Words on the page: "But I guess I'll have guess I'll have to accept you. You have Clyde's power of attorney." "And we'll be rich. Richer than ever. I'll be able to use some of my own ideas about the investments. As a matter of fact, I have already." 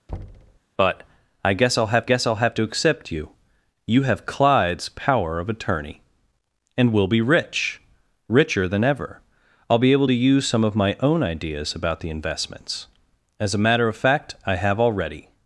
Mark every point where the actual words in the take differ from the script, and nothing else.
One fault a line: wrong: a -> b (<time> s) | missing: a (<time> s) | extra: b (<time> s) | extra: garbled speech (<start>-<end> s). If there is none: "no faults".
no faults